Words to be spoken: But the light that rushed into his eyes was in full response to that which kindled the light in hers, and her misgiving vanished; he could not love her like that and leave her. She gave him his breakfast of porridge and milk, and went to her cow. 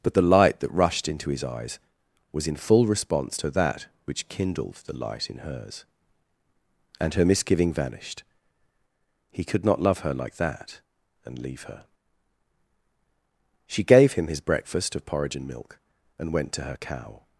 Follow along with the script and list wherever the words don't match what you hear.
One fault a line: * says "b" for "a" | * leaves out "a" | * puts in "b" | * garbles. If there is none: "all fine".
all fine